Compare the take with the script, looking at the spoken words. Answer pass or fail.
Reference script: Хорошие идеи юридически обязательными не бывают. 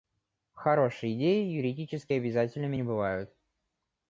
pass